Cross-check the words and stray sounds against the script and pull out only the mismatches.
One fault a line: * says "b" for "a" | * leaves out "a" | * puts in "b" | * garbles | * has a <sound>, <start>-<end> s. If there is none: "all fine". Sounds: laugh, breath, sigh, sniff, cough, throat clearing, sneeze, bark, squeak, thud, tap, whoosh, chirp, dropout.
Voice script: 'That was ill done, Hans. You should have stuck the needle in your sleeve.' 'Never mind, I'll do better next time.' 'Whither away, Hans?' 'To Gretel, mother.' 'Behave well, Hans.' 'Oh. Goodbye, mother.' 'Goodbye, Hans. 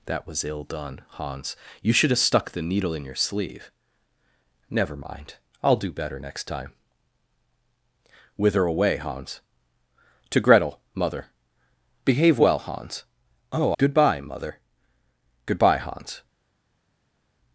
all fine